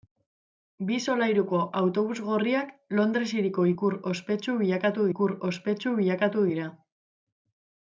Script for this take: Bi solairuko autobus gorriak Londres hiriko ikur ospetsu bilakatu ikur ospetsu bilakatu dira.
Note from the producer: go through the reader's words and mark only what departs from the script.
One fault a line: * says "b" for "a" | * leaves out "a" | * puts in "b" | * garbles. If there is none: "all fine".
all fine